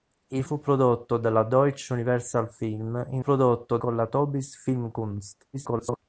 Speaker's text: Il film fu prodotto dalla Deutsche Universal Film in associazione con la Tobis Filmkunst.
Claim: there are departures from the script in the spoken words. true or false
true